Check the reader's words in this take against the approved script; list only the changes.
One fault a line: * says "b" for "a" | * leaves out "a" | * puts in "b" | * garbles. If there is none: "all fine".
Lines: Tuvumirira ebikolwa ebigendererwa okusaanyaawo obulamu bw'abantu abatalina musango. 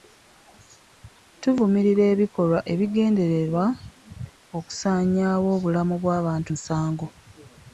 * leaves out "abatalina"